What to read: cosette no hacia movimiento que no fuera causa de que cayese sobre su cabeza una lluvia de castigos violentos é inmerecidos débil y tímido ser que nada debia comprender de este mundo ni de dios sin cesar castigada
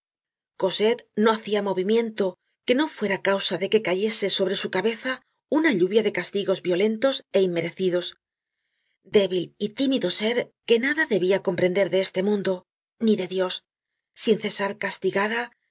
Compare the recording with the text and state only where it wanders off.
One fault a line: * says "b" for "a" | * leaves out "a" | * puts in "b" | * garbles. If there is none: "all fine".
all fine